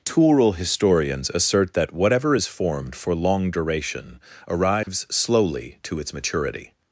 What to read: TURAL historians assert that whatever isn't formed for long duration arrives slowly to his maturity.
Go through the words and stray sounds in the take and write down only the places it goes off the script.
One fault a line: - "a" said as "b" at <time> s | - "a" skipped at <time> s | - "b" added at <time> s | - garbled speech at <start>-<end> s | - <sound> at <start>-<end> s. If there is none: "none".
- "isn't" said as "is" at 2.3 s
- dropout at 4.8-4.9 s
- "his" said as "its" at 6.0 s